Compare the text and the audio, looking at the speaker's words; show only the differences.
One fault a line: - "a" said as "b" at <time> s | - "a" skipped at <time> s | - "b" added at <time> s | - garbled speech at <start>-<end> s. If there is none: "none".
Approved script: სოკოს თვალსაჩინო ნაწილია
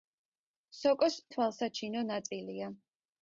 none